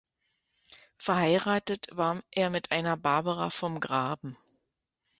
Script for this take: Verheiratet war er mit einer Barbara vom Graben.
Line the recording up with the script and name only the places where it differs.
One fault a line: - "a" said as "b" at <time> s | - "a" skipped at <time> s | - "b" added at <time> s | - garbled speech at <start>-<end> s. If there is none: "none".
none